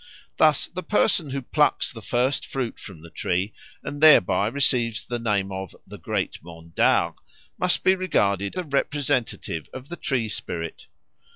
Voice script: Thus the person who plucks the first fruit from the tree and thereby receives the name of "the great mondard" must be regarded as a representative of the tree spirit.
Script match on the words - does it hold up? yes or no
no